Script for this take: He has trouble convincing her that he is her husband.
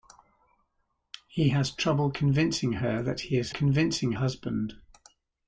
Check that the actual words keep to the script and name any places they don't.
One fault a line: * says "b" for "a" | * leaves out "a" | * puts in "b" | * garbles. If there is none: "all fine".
* says "convincing" for "her"